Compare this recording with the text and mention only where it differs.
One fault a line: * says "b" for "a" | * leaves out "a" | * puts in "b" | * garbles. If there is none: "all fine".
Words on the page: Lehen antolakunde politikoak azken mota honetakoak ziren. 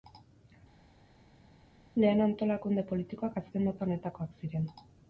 all fine